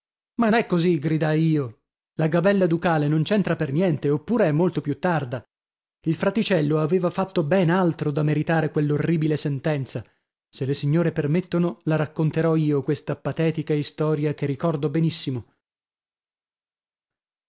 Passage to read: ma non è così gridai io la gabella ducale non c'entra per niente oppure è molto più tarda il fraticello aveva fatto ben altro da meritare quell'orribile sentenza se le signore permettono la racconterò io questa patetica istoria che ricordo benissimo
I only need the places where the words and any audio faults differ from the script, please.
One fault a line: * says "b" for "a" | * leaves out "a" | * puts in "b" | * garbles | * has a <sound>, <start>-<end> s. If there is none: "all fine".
* leaves out "non"